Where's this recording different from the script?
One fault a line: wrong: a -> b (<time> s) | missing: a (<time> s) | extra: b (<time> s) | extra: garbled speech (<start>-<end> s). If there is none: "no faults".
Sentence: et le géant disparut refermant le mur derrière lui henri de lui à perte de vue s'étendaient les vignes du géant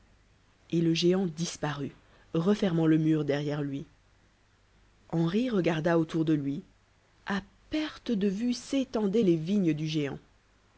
extra: regarda autour (5.5 s)